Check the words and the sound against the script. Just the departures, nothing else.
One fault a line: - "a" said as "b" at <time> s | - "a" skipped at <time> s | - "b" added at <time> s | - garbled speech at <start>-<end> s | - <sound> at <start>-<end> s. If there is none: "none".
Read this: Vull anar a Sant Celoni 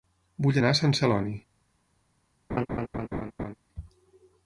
- laugh at 2.5-3.5 s